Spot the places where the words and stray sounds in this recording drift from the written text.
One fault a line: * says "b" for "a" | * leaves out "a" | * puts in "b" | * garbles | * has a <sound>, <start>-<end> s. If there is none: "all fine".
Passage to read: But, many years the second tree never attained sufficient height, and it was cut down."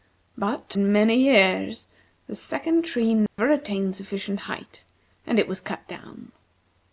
* has a dropout, 3.3-3.4 s